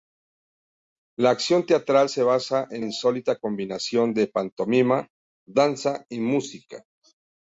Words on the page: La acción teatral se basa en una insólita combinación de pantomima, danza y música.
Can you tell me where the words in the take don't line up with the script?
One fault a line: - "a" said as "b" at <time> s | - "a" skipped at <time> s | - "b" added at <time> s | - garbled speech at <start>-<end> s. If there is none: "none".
- "una" skipped at 2.8 s